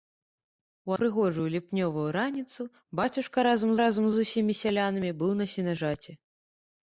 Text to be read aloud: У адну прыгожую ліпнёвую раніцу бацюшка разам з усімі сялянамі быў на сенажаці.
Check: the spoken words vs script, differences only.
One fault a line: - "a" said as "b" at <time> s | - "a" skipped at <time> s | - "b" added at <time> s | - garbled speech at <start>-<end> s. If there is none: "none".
- "адну" skipped at 0.9 s
- "разам" added at 3.8 s